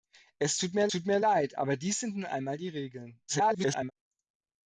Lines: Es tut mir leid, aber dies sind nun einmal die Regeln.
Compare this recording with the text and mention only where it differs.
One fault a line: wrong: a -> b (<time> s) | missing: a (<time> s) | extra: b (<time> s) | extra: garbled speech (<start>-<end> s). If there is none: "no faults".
extra: tut mir (0.9 s)
extra: garbled speech (3.3-3.9 s)